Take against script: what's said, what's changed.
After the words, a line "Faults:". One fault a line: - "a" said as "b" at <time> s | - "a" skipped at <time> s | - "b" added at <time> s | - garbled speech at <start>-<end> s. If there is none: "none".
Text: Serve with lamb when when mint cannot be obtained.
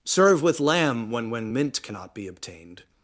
Serve with lamb when when mint cannot be obtained.
Faults:
none